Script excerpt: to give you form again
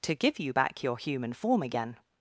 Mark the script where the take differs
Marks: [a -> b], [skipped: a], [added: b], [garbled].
to give you [added: back your human] form again